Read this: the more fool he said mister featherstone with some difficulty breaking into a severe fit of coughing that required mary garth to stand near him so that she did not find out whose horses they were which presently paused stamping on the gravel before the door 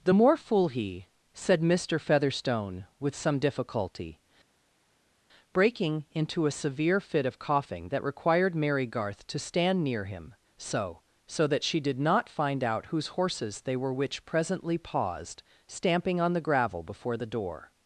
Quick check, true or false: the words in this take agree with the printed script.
false